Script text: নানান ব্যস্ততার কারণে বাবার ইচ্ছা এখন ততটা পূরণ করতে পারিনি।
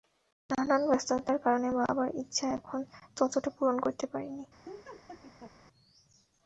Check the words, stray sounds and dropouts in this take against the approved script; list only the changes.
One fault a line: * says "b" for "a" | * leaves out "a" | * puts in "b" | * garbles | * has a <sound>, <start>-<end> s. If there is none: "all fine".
* has a laugh, 4.6-5.5 s